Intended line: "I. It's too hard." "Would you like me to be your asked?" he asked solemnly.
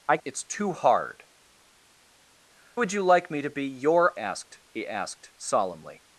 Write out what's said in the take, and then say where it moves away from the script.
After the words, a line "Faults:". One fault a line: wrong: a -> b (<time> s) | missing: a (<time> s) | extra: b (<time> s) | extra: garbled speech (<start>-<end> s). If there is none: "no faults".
"I. It's too hard." "Would you like me to be your asked?" he asked solemnly.
Faults:
no faults